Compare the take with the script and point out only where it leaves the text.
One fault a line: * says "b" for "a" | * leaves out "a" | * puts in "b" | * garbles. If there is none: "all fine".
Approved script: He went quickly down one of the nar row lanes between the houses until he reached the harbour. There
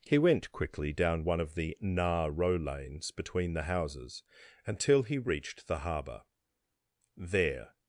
all fine